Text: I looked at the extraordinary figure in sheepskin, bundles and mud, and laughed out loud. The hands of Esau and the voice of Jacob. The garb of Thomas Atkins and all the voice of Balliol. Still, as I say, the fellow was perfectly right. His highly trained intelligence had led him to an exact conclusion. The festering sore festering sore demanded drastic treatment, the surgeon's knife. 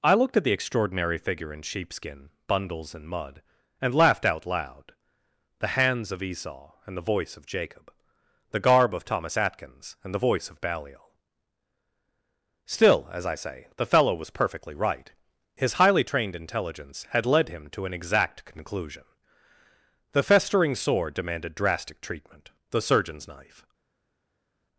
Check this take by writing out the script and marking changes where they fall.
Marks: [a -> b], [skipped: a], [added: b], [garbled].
I looked at the extraordinary figure in sheepskin, bundles and mud, and laughed out loud. The hands of Esau and the voice of Jacob. The garb of Thomas Atkins and [skipped: all] the voice of Balliol. Still, as I say, the fellow was perfectly right. His highly trained intelligence had led him to an exact conclusion. The festering sore [skipped: festering sore] demanded drastic treatment, the surgeon's knife.